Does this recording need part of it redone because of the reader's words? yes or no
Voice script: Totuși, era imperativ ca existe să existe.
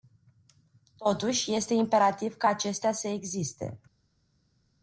yes